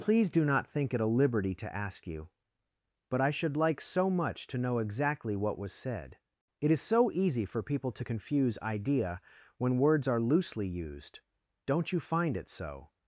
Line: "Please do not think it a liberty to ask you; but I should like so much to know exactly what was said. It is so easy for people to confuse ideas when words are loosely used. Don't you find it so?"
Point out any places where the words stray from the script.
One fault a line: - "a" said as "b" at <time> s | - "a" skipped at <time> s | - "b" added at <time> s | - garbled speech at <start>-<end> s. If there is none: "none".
- "ideas" said as "idea" at 8.6 s